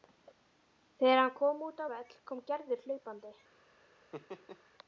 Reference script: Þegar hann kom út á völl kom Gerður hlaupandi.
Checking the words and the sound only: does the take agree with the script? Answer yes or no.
no